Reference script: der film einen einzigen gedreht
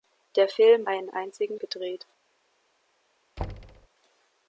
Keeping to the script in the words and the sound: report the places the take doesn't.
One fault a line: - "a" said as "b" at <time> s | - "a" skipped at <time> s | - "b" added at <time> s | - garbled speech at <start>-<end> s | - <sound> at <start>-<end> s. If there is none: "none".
- thud at 3.4-3.9 s